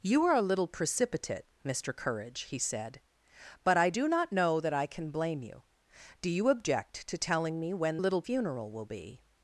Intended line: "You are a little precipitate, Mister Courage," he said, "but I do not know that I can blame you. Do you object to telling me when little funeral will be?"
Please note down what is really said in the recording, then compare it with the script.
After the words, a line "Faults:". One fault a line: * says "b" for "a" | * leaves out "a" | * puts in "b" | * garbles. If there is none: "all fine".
"You are a little precipitate, Mister Courage," he said, "but I do not know that I can blame you. Do you object to telling me when little funeral will be?"
Faults:
all fine